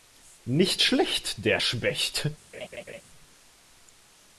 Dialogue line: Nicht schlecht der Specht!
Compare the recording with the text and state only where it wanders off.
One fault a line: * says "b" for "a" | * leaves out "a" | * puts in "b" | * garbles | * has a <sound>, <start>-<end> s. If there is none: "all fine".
* has a laugh, 2.5-3.0 s